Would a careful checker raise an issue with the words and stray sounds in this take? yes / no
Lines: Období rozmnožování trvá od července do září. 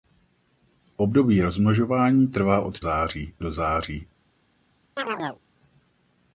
yes